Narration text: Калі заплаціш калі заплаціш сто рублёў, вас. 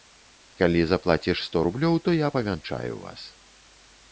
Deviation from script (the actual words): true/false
true